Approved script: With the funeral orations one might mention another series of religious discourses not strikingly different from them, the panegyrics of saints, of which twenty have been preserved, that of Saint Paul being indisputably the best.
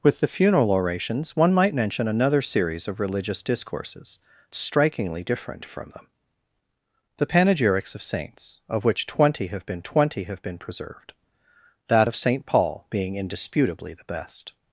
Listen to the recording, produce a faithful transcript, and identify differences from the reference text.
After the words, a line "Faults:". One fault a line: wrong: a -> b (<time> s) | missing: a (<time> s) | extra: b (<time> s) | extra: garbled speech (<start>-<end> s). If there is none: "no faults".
With the funeral orations one might mention another series of religious discourses strikingly different from them, the panegyrics of saints, of which twenty have been twenty have been preserved, that of Saint Paul being indisputably the best.
Faults:
missing: not (4.2 s)
extra: twenty have been (9.8 s)